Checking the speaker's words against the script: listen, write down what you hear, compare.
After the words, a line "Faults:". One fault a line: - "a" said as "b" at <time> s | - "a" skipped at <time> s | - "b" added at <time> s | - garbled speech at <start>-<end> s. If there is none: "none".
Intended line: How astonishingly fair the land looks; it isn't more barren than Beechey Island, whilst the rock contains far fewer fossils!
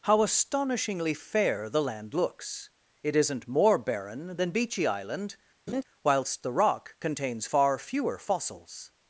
How astonishingly fair the land looks; it isn't more barren than Beechey Island, whilst the rock contains far fewer fossils!
Faults:
none